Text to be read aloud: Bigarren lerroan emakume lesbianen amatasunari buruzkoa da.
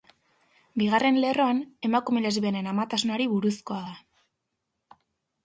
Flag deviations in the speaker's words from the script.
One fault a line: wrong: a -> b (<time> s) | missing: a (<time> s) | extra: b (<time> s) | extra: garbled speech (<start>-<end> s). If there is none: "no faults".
no faults